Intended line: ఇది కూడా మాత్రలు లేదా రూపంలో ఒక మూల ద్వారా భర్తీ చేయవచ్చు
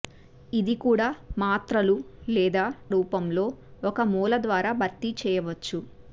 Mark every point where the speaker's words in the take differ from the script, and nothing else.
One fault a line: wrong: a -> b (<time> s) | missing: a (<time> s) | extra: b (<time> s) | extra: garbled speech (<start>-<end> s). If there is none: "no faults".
no faults